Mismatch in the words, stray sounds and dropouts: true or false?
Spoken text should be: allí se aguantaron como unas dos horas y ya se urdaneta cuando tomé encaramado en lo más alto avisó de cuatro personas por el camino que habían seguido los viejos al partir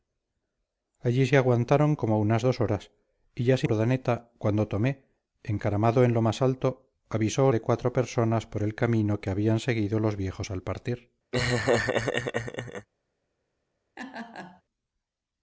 true